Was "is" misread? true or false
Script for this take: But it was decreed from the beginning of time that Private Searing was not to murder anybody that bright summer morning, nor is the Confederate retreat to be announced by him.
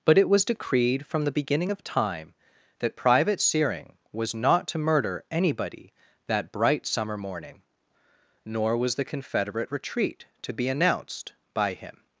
true